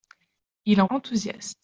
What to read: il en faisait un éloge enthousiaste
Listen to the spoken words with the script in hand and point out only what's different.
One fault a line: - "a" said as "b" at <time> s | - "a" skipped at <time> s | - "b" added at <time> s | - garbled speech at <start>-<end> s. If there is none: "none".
- "faisait un éloge" skipped at 0.9 s